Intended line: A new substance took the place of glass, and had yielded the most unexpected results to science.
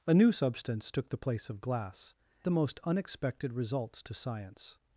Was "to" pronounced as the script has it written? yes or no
yes